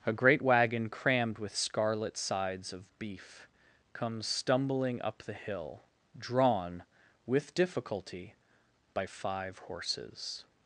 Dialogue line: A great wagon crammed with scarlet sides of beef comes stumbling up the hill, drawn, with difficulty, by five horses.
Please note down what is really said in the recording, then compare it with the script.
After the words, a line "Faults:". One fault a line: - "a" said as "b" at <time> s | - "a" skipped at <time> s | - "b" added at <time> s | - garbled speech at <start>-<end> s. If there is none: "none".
A great wagon crammed with scarlet sides of beef comes stumbling up the hill, drawn, with difficulty, by five horses.
Faults:
none